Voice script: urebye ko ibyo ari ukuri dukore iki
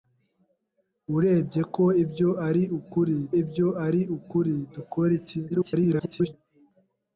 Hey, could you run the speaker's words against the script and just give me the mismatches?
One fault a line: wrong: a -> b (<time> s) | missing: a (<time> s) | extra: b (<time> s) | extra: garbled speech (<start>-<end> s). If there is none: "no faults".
extra: ibyo ari ukuri (3.4 s)
extra: garbled speech (5.5-6.3 s)